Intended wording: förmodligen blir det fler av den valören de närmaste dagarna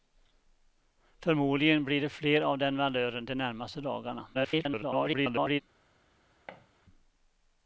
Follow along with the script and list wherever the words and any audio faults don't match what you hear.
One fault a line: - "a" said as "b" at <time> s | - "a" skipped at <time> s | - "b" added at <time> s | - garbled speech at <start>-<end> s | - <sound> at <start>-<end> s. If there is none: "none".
- garbled speech at 4.3-5.6 s
- thud at 6.5-6.7 s